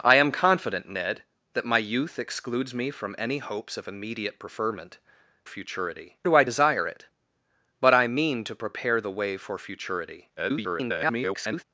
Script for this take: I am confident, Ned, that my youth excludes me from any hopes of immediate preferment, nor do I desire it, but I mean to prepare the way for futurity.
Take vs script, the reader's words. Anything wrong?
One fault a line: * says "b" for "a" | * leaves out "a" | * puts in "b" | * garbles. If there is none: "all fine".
* says "futurity" for "nor"
* garbles